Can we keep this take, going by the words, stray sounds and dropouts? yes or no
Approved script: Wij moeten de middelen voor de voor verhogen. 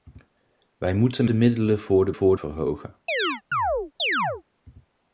no